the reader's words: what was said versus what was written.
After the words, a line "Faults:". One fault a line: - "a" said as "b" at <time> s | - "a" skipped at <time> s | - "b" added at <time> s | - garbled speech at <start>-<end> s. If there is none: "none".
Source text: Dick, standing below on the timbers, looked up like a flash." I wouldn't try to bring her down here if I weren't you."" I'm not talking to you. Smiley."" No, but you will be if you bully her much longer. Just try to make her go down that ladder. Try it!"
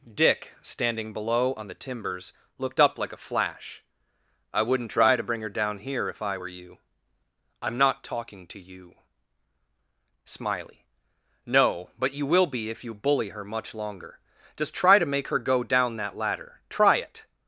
Dick, standing below on the timbers, looked up like a flash." I wouldn't try to bring her down here if I were you."" I'm not talking to you. Smiley."" No, but you will be if you bully her much longer. Just try to make her go down that ladder. Try it!"
Faults:
- "weren't" said as "were" at 6.4 s